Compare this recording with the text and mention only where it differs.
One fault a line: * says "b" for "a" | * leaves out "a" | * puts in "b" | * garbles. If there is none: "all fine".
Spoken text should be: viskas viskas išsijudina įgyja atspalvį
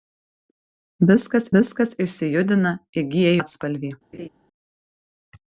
all fine